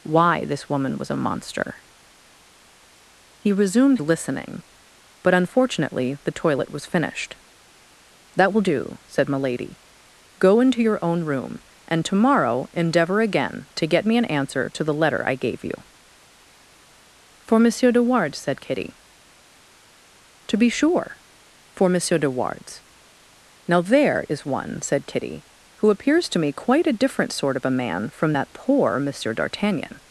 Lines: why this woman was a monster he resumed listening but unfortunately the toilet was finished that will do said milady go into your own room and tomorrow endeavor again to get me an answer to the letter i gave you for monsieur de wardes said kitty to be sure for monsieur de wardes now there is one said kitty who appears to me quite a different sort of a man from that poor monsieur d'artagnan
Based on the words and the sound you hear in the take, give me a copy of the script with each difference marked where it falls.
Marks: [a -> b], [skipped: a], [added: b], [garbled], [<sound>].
why this woman was a monster he resumed listening but unfortunately the toilet was finished that will do said milady go into your own room and tomorrow endeavor again to get me an answer to the letter i gave you for monsieur de wardes said kitty to be sure for monsieur de wardes now there is one said kitty who appears to me quite a different sort of a man from that poor monsieur d'artagnan